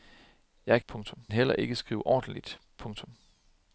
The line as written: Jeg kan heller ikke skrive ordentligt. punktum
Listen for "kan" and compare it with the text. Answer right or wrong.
wrong